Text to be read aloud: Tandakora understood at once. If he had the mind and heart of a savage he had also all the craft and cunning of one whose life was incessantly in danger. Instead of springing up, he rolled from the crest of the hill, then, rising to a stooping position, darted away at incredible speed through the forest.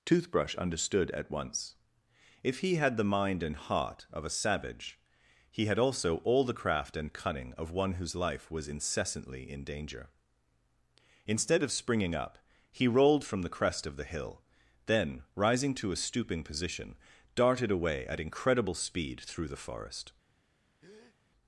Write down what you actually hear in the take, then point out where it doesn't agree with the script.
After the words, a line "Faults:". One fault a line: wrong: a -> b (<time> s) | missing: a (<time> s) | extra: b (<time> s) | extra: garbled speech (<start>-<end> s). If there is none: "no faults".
Toothbrush understood at once. If he had the mind and heart of a savage he had also all the craft and cunning of one whose life was incessantly in danger. Instead of springing up, he rolled from the crest of the hill, then, rising to a stooping position, darted away at incredible speed through the forest.
Faults:
wrong: Tandakora -> Toothbrush (0.1 s)